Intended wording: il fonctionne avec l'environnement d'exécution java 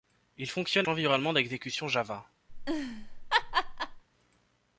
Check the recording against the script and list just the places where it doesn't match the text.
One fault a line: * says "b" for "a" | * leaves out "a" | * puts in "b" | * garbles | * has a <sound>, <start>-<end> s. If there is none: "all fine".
* leaves out "avec"
* has a laugh, 2.5-4.0 s